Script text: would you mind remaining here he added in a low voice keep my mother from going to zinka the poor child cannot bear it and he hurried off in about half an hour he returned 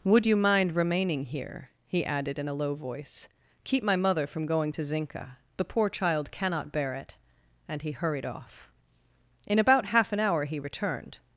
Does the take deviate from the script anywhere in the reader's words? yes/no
no